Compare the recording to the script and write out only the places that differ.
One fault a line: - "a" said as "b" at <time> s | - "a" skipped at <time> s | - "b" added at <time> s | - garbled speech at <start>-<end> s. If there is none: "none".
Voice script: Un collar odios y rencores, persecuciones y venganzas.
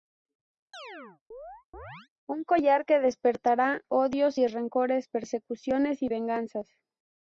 - "que despertará" added at 2.8 s